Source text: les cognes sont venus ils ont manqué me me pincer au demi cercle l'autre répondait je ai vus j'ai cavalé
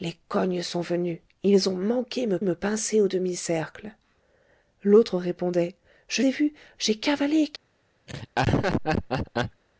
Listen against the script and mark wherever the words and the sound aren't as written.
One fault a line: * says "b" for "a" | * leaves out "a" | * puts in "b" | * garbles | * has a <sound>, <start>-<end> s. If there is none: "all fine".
* has a laugh, 8.1-9.6 s